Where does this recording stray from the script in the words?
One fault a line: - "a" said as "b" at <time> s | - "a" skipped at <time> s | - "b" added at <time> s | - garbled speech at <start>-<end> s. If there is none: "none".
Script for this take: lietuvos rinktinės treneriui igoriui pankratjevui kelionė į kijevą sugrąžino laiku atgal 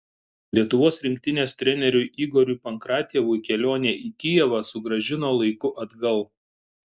none